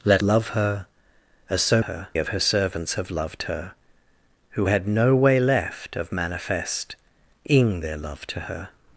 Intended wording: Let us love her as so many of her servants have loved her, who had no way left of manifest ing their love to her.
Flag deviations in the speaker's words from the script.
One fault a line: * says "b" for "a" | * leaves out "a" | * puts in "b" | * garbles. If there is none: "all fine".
* leaves out "us"
* says "her" for "many"